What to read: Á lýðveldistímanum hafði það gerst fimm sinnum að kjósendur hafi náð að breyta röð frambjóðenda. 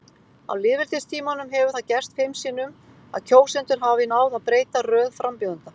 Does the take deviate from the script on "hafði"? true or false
true